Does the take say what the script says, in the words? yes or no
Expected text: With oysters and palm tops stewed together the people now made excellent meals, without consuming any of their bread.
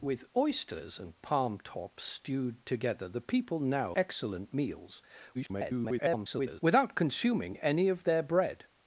no